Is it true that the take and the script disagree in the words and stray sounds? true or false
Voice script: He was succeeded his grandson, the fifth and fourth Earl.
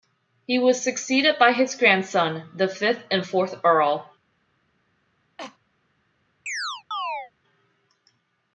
true